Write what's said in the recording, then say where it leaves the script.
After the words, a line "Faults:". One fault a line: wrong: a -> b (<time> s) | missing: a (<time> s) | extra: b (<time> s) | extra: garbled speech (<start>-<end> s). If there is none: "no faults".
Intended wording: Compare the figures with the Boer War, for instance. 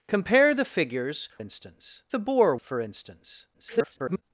Compare the figures instance the Boer For instance. [garbled]
Faults:
wrong: with -> instance (1.4 s)
missing: War (2.6 s)
extra: garbled speech (3.5-4.2 s)